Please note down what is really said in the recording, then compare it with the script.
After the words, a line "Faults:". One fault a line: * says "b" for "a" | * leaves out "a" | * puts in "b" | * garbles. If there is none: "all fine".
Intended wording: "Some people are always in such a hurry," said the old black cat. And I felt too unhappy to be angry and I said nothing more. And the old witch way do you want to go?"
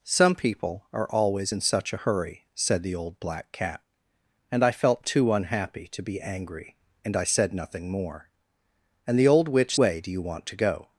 "Some people are always in such a hurry," said the old black cat. And I felt too unhappy to be angry and I said nothing more. And the old witch way do you want to go?"
Faults:
all fine